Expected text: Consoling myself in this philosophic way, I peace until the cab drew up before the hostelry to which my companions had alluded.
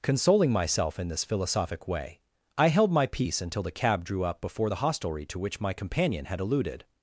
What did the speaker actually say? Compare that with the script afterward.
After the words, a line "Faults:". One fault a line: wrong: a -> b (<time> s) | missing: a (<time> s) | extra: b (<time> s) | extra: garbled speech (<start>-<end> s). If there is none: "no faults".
Consoling myself in this philosophic way, I held my peace until the cab drew up before the hostelry to which my companion had alluded.
Faults:
extra: held my (2.7 s)
wrong: companions -> companion (5.7 s)